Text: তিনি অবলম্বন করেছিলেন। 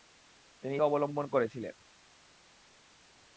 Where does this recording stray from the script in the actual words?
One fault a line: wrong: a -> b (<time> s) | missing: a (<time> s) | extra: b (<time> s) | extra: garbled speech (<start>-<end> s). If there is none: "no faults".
no faults